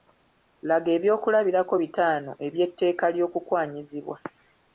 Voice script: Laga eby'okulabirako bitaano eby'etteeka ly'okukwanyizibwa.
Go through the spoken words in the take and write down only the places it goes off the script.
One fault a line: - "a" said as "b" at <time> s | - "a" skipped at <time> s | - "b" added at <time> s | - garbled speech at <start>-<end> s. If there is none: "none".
none